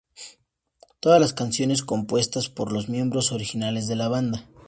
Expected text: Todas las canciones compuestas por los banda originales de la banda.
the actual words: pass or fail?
fail